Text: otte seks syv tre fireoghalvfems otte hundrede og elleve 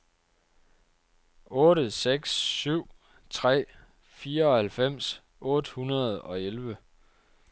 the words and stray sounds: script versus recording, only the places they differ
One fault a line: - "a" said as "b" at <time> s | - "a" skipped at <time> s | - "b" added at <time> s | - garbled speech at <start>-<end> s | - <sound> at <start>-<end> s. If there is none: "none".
none